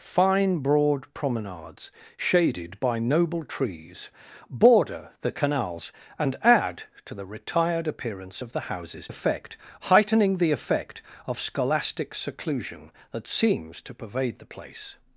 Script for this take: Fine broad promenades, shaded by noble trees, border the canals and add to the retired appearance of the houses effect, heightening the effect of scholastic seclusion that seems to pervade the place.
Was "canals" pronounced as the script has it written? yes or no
yes